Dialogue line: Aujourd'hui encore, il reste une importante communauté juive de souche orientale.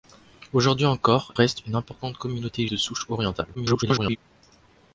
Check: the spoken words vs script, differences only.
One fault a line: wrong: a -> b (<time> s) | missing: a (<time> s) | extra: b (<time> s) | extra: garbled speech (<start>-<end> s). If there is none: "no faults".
missing: il (1.4 s)
missing: juive (2.7 s)
extra: garbled speech (3.5-4.2 s)